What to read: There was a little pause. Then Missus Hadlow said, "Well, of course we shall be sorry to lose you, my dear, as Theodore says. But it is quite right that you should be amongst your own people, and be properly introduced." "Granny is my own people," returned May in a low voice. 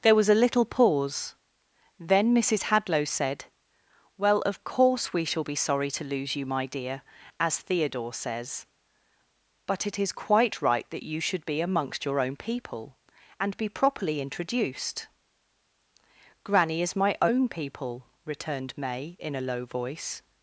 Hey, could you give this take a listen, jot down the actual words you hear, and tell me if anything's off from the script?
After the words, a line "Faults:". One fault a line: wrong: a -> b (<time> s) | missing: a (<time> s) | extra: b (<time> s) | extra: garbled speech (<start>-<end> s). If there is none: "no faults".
There was a little pause. Then Missus Hadlow said, "Well, of course we shall be sorry to lose you, my dear, as Theodore says. But it is quite right that you should be amongst your own people, and be properly introduced." "Granny is my own people," returned May in a low voice.
Faults:
no faults